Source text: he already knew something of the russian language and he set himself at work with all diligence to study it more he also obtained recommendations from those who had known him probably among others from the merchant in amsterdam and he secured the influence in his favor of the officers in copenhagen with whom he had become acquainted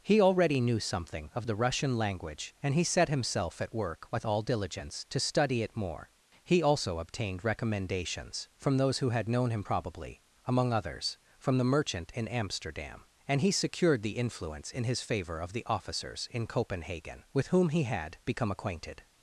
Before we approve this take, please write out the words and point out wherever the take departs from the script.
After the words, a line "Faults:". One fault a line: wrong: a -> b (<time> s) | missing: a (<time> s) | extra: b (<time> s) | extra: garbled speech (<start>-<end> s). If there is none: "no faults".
he already knew something of the russian language and he set himself at work with all diligence to study it more he also obtained recommendations from those who had known him probably among others from the merchant in amsterdam and he secured the influence in his favor of the officers in copenhagen with whom he had become acquainted
Faults:
no faults